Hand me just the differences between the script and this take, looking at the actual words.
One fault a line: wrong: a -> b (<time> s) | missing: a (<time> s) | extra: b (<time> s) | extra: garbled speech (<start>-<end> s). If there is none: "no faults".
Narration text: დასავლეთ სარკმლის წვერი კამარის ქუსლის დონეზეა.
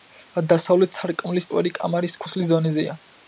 no faults